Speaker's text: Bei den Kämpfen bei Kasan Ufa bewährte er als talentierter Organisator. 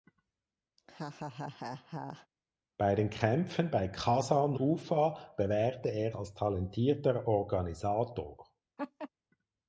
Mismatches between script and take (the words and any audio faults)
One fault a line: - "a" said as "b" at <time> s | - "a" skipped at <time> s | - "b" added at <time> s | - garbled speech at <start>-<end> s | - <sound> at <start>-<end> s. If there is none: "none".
- laugh at 0.8-2.3 s
- laugh at 8.8-9.1 s